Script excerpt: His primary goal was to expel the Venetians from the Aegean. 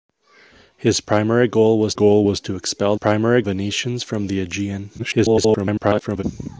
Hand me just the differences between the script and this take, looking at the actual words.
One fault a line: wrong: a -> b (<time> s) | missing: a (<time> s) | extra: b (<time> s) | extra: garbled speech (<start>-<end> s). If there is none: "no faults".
extra: goal was (1.9 s)
wrong: the -> primary (2.9 s)
extra: garbled speech (5.0-6.2 s)